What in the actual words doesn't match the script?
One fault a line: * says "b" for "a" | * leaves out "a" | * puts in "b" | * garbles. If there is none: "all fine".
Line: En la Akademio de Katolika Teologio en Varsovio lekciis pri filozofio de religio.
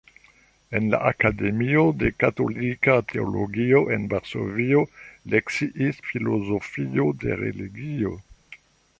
* leaves out "pri"